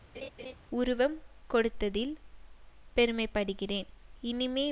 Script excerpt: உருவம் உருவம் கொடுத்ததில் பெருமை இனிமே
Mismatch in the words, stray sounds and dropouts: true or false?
true